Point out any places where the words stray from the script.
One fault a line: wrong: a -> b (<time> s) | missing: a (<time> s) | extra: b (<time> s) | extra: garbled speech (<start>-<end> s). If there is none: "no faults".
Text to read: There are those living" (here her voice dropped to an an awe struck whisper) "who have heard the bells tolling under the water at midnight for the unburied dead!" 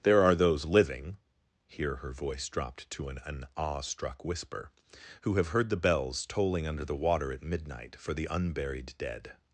no faults